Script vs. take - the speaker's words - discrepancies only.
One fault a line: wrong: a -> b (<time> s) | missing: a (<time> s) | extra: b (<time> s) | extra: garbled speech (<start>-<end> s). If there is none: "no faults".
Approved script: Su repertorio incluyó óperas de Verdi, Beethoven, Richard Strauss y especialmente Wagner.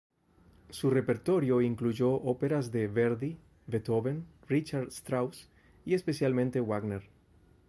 no faults